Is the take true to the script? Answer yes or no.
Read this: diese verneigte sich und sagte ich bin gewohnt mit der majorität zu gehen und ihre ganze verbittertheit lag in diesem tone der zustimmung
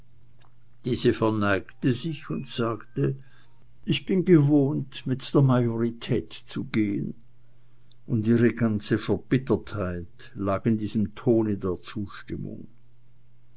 yes